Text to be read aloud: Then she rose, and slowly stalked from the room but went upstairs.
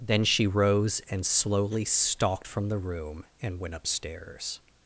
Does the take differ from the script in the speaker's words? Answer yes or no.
yes